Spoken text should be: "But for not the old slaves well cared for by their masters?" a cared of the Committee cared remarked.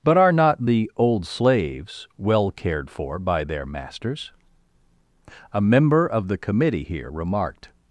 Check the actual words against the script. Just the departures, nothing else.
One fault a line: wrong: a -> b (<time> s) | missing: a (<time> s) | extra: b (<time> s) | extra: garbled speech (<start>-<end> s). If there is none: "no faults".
wrong: for -> are (0.2 s)
wrong: cared -> member (5.6 s)
wrong: cared -> here (6.8 s)